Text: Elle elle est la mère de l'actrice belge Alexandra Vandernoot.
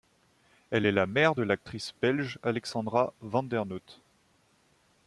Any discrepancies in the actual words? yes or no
yes